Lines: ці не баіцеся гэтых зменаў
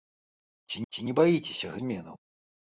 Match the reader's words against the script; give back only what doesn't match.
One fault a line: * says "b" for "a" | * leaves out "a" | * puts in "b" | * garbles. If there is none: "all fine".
* puts in "ці"
* leaves out "гэтых"